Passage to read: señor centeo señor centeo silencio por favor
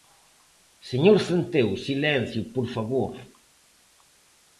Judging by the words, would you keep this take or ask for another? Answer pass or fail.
fail